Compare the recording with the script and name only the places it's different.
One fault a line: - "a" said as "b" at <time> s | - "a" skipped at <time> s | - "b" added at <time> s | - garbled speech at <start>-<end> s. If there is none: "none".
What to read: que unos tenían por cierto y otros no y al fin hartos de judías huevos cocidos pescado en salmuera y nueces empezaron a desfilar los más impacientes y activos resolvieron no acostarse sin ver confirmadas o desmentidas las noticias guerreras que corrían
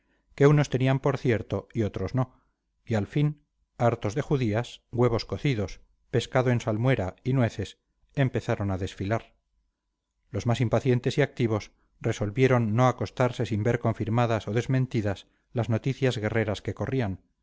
none